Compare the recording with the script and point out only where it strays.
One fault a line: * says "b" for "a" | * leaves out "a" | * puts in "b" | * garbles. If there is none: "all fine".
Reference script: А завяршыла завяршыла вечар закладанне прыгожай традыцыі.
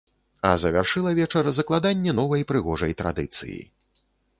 * leaves out "завяршыла"
* puts in "новай"